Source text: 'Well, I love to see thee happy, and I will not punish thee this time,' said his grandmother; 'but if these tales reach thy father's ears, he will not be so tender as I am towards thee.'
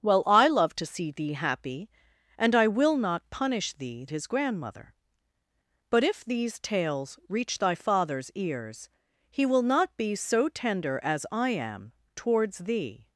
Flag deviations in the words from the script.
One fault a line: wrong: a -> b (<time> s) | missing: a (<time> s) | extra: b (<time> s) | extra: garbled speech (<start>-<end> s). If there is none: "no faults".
missing: this time said (4.0 s)